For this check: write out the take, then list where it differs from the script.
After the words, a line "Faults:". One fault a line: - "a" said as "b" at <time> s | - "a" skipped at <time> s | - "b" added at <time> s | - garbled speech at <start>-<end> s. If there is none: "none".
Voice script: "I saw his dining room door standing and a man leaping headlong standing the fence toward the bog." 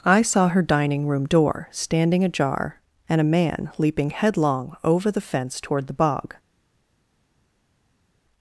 "I saw her dining room door standing ajar and a man leaping headlong over the fence toward the bog."
Faults:
- "his" said as "her" at 0.5 s
- "ajar" added at 2.2 s
- "standing" said as "over" at 4.8 s